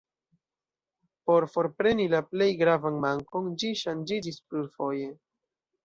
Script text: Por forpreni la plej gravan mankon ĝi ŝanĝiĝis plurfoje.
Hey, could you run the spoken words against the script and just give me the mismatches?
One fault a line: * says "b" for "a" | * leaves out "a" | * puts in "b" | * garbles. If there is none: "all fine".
all fine